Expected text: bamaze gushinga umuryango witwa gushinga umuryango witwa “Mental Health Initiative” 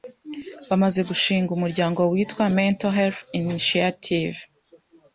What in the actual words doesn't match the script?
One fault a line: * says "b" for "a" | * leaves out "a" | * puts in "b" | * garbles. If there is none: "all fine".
* leaves out "gushinga umuryango witwa"